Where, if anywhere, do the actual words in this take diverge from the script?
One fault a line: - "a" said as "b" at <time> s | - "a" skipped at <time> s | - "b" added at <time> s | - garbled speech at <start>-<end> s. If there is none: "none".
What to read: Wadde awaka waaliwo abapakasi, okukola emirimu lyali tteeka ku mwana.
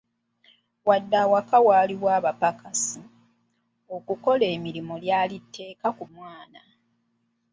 none